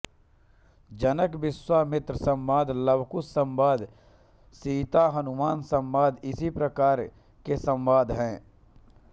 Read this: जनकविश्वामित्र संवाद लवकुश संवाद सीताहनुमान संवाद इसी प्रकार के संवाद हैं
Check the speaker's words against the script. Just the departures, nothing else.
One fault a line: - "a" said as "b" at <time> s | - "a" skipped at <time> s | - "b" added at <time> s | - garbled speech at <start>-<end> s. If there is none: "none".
none